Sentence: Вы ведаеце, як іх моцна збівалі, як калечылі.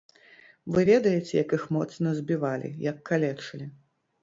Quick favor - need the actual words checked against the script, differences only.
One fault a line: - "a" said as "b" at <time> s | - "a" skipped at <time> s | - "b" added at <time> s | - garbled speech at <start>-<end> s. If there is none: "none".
none